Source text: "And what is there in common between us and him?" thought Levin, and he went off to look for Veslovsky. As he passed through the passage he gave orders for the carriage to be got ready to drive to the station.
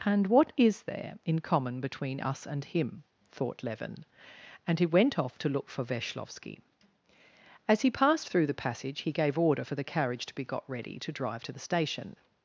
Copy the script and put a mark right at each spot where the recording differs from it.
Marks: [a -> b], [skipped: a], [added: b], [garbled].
"And what is there in common between us and him?" thought Levin, and he went off to look for Veslovsky. As he passed through the passage he gave [orders -> order] for the carriage to be got ready to drive to the station.